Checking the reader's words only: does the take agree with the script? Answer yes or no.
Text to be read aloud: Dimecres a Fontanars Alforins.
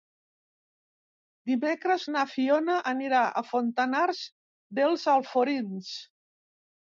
no